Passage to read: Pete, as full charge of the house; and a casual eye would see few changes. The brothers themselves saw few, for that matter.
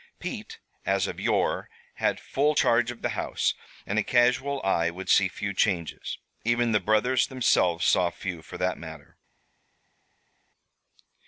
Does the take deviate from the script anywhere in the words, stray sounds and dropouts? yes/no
yes